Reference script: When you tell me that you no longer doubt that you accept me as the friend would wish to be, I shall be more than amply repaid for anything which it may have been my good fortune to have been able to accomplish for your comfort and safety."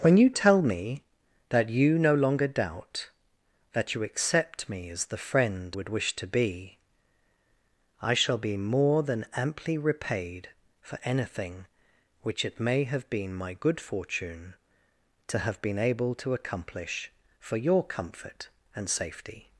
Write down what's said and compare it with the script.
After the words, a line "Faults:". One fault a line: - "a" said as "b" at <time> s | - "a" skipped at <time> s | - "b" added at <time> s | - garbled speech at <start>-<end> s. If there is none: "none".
When you tell me that you no longer doubt that you accept me as the friend would wish to be, I shall be more than amply repaid for anything which it may have been my good fortune to have been able to accomplish for your comfort and safety."
Faults:
none